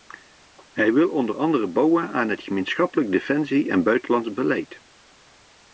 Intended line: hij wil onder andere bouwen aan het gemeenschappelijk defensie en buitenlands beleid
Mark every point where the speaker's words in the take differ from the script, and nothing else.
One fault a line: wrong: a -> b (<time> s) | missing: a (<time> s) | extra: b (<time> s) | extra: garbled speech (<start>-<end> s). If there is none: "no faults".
no faults